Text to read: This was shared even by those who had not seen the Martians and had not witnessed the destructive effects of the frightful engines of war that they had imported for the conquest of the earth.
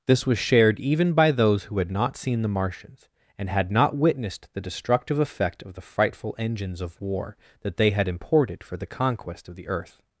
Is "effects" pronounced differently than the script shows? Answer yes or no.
yes